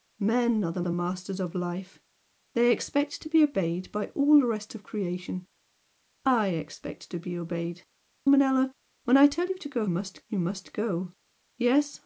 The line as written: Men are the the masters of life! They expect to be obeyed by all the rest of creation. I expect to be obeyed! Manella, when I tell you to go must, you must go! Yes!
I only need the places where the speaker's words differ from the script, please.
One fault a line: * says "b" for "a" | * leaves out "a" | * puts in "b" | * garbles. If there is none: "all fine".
all fine